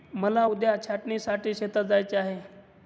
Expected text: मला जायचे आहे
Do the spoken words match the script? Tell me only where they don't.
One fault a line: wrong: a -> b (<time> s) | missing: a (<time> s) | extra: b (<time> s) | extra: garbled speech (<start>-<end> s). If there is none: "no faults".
extra: उद्या छाटणीसाठी शेतात (0.4 s)